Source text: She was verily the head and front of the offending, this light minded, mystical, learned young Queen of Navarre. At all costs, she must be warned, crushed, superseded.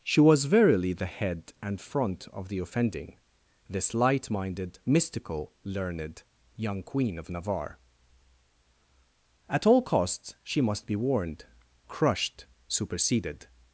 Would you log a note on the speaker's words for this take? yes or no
no